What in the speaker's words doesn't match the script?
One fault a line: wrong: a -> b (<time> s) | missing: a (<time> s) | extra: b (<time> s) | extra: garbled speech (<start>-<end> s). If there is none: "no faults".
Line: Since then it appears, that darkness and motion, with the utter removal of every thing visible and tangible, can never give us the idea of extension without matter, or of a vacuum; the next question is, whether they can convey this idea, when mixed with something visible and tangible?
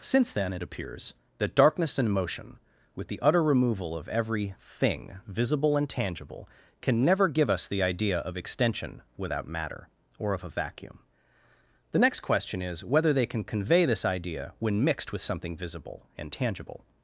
no faults